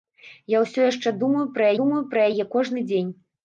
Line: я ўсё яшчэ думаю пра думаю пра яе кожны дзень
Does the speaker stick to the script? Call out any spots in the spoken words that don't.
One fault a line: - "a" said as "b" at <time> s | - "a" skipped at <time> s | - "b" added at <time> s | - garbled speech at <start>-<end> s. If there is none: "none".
none